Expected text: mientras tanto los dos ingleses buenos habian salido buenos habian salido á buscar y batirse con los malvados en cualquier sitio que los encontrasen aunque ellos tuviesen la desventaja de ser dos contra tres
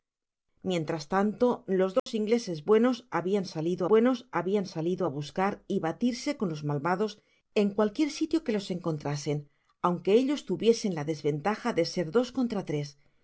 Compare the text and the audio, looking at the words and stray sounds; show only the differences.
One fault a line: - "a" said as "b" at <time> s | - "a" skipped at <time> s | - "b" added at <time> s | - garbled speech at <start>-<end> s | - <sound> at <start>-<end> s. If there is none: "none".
- dropout at 2.0-2.1 s